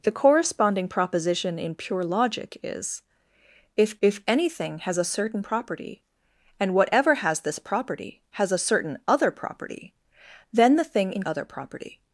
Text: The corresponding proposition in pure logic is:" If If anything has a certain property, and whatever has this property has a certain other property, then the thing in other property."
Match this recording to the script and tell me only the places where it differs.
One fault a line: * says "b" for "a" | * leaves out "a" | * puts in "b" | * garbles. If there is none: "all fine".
all fine